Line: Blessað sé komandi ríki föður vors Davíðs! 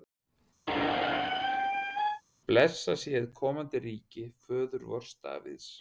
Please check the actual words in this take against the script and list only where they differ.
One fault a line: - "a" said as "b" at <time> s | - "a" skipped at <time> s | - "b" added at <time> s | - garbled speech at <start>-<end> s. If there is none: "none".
- "hið" added at 3.1 s